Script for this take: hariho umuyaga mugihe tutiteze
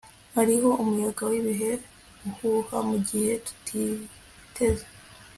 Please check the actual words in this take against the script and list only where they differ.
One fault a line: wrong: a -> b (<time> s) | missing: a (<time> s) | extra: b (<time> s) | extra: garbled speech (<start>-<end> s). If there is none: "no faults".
extra: wibihe uhuha (1.3 s)